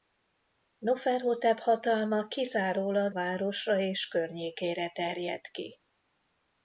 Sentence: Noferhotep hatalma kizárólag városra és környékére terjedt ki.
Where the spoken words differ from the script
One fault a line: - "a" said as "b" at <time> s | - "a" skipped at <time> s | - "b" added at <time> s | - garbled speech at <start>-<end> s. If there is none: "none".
none